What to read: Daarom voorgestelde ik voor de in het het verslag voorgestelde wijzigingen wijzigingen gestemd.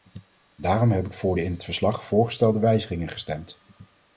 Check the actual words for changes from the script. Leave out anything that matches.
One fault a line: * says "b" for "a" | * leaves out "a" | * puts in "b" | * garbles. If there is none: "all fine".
* says "heb" for "voorgestelde"
* leaves out "het"
* leaves out "wijzigingen"